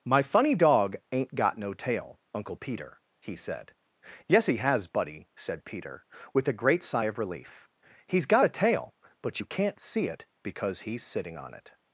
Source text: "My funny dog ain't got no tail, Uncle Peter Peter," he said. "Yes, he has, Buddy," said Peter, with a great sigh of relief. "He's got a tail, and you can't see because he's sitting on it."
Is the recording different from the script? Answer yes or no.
yes